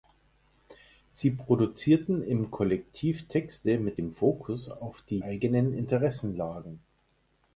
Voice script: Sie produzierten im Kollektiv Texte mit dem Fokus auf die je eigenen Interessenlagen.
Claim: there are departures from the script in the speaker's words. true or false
true